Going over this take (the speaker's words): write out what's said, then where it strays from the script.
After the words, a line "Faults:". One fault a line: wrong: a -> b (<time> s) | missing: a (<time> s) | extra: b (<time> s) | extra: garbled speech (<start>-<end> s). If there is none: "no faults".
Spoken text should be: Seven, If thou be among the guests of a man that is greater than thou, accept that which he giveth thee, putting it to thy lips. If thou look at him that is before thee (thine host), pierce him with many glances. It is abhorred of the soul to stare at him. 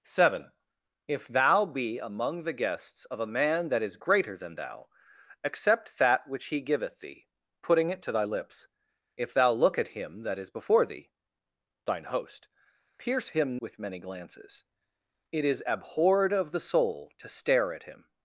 Seven, If thou be among the guests of a man that is greater than thou, accept that which he giveth thee, putting it to thy lips. If thou look at him that is before thee (thine host), pierce him with many glances. It is abhorred of the soul to stare at him.
Faults:
no faults